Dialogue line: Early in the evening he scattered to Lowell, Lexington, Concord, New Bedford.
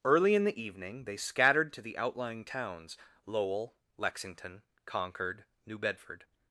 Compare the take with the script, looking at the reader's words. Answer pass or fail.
fail